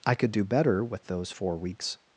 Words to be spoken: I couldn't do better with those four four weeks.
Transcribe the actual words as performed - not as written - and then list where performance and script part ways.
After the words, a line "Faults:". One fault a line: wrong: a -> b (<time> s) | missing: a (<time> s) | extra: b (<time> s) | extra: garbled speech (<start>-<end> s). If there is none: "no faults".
I could do better with those four weeks.
Faults:
wrong: couldn't -> could (0.1 s)
missing: four (1.6 s)